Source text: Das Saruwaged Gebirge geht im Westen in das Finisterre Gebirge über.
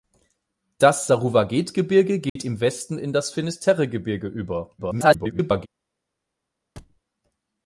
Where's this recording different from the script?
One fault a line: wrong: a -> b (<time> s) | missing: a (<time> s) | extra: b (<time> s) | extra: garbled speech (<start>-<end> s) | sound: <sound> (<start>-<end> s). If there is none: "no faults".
sound: dropout (2.3-2.4 s)
extra: garbled speech (4.8-5.7 s)
sound: thud (6.8-7.0 s)